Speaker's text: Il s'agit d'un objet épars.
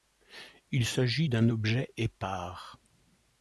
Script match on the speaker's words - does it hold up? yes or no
yes